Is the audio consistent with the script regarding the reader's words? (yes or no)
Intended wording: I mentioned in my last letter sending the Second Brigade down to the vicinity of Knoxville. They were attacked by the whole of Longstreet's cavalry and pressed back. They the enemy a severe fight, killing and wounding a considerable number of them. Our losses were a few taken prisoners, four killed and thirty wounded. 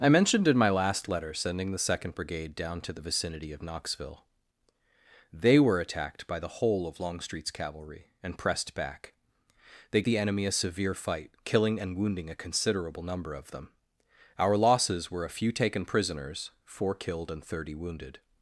yes